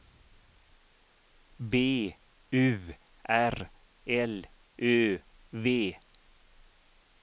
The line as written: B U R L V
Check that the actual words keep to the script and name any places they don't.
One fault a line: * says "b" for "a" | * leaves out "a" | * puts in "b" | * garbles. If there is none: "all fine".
* puts in "Ö"